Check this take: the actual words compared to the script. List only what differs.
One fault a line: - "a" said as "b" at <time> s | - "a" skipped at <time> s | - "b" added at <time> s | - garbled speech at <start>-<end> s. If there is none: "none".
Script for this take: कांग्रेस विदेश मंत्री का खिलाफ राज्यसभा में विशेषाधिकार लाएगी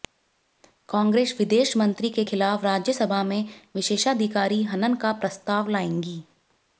- "का" said as "के" at 2.1 s
- "हनन का प्रस्ताव" added at 4.7 s